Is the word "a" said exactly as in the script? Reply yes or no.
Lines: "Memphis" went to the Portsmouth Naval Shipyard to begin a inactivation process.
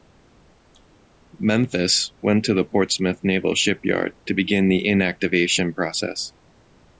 no